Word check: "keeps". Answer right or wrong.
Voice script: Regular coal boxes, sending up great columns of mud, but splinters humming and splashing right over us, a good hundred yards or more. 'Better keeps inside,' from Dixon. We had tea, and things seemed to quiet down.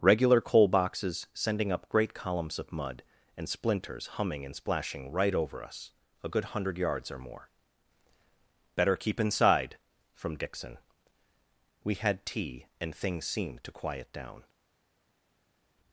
wrong